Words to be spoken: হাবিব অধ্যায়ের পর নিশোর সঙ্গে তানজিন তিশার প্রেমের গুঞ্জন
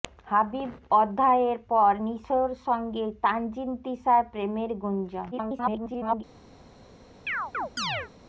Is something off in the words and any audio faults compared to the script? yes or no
yes